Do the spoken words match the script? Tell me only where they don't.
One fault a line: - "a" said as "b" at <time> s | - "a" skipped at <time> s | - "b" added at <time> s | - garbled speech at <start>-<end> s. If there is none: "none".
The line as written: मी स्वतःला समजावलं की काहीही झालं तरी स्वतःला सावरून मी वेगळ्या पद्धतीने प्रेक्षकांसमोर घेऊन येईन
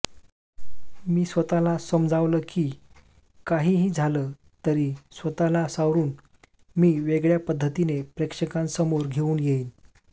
none